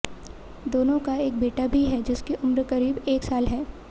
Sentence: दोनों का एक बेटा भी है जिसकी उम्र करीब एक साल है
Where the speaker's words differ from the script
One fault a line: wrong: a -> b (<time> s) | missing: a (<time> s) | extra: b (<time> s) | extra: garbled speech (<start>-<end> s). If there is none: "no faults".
no faults